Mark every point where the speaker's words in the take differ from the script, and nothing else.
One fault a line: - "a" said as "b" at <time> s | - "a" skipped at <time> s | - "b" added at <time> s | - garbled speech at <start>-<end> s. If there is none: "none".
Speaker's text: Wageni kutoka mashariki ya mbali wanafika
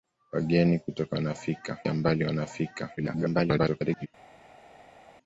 - "mashariki" said as "wanafika" at 1.1 s
- garbled speech at 3.0-4.1 s